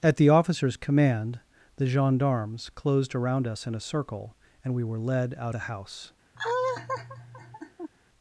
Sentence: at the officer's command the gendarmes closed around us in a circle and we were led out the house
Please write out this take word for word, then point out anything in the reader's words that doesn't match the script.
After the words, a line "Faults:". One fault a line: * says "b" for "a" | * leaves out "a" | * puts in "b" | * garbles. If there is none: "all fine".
at the officer's command the gendarmes closed around us in a circle and we were led out the house
Faults:
all fine